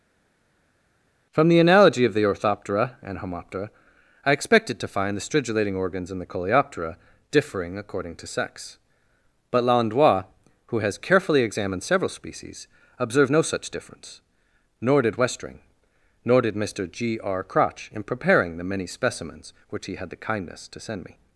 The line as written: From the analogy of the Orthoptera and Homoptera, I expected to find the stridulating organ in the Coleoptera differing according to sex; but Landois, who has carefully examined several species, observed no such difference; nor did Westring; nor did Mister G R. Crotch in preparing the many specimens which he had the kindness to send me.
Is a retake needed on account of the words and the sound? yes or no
yes